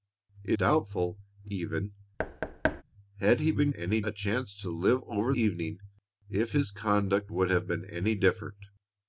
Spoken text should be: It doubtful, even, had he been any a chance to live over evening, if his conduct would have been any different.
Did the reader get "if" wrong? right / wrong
right